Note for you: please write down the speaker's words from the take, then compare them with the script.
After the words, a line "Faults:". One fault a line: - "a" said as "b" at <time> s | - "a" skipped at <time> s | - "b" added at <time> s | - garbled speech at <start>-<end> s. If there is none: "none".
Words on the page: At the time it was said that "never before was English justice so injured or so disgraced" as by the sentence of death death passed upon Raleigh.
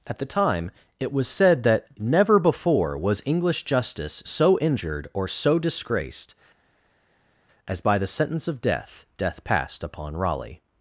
At the time it was said that "never before was English justice so injured or so disgraced" as by the sentence of death death passed upon Raleigh.
Faults:
none